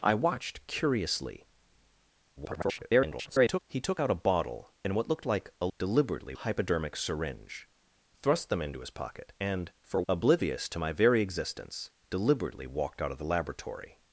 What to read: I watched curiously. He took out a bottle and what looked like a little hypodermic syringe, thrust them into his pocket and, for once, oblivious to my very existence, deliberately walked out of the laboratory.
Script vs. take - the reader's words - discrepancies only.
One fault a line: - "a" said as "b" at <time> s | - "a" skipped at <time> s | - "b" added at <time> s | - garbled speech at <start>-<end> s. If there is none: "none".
- garbled speech at 2.4-3.6 s
- "little" said as "deliberately" at 5.8 s
- "once" skipped at 10.0 s